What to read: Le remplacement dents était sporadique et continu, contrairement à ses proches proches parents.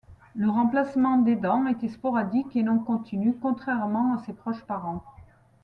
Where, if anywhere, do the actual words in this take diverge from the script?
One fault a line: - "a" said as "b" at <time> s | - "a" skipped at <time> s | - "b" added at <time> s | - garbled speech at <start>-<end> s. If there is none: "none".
- "des" added at 1.2 s
- "non" added at 2.6 s
- "proches" skipped at 4.6 s